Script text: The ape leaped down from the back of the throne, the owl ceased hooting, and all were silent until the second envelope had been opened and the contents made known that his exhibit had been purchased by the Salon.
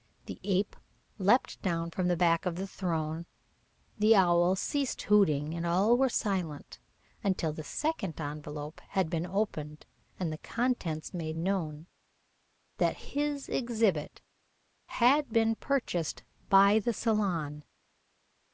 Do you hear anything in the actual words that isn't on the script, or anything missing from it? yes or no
no